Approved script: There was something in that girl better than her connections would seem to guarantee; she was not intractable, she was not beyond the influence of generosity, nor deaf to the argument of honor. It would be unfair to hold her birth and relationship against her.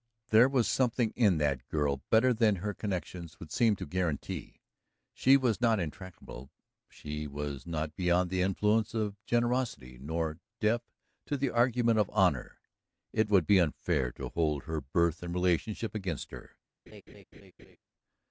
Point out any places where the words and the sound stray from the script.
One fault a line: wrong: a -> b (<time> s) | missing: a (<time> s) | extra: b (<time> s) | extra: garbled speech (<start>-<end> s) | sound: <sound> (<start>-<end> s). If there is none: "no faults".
sound: laugh (16.9-17.8 s)